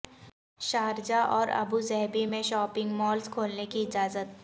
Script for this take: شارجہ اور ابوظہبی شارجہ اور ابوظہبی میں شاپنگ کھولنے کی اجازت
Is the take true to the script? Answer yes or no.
no